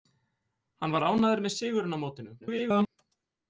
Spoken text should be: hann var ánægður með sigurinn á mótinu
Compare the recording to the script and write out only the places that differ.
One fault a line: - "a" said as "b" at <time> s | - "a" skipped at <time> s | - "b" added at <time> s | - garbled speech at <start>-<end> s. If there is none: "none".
- garbled speech at 2.4-2.9 s